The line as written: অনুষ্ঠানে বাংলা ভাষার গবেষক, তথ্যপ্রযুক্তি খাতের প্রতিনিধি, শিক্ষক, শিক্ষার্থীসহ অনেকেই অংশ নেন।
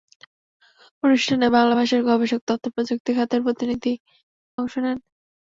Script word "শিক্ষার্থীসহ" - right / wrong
wrong